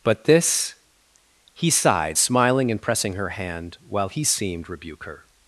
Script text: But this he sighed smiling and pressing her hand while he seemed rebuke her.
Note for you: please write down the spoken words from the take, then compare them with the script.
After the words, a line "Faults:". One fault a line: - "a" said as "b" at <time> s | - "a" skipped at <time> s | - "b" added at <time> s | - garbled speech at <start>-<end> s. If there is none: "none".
But this he sighed smiling and pressing her hand while he seemed rebuke her.
Faults:
none